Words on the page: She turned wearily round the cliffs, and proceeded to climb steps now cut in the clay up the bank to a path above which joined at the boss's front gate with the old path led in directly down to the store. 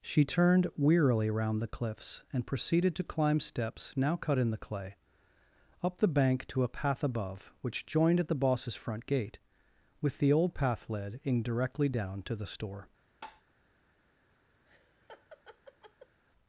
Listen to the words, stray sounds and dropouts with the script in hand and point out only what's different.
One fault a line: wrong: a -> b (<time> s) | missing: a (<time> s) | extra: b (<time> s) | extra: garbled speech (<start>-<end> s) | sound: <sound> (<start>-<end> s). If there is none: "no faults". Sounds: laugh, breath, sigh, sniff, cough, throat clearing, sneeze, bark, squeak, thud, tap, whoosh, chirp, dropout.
sound: tap (13.2-13.4 s)
sound: laugh (14.6-16.2 s)